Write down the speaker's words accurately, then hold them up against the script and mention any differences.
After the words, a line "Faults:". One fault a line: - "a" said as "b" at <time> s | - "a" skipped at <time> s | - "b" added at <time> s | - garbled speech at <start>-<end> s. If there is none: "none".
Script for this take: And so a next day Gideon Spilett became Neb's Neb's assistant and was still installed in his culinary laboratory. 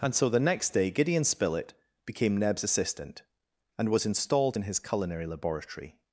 And so the next day Gideon Spilett became Neb's assistant and was installed in his culinary laboratory.
Faults:
- "a" said as "the" at 0.3 s
- "Neb's" skipped at 2.6 s
- "still" skipped at 4.0 s